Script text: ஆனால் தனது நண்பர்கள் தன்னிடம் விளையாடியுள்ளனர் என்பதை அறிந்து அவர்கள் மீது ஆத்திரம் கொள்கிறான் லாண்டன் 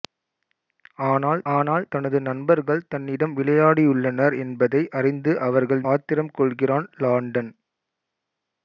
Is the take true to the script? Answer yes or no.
no